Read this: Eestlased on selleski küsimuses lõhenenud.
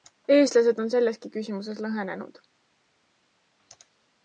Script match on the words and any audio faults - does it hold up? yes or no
yes